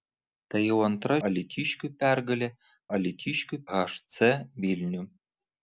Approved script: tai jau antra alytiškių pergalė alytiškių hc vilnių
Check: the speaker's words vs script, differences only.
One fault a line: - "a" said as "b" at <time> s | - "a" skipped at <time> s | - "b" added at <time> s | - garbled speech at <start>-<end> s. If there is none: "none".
none